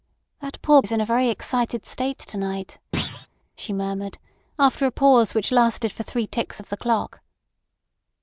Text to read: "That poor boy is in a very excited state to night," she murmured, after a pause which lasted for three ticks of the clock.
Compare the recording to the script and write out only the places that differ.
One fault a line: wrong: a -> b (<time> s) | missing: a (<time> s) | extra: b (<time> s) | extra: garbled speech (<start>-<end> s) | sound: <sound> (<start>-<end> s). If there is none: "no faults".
missing: boy (0.8 s)
sound: thud (2.9-3.3 s)